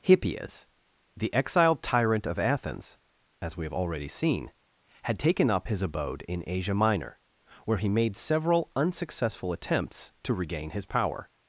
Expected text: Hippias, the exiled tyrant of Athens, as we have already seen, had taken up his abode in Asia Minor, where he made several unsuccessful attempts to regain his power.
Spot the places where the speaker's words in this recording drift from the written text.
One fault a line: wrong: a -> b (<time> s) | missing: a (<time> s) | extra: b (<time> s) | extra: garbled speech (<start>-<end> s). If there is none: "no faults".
no faults